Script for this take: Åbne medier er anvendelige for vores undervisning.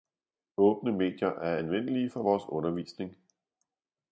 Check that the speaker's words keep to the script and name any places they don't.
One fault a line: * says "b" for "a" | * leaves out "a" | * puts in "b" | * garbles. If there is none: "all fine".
all fine